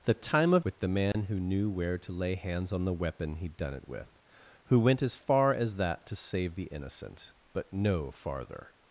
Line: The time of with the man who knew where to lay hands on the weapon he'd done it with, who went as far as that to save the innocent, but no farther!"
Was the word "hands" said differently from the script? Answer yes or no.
no